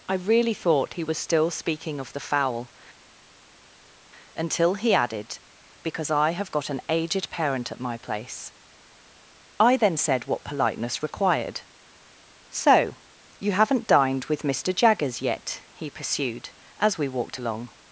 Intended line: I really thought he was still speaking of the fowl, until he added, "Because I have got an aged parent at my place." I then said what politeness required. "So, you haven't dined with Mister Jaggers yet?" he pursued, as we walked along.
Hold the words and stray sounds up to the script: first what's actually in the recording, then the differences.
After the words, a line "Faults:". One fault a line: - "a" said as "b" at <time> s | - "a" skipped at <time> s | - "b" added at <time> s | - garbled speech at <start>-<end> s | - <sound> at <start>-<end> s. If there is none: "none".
I really thought he was still speaking of the fowl, until he added, "Because I have got an aged parent at my place." I then said what politeness required. "So, you haven't dined with Mister Jaggers yet?" he pursued, as we walked along.
Faults:
none